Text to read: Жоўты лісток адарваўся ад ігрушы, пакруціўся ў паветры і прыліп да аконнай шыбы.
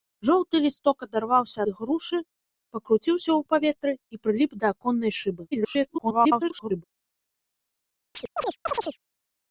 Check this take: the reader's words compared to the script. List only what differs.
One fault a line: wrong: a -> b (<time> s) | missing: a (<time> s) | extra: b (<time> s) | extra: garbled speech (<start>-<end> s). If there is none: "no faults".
missing: ад (1.6 s)
extra: garbled speech (5.5-6.8 s)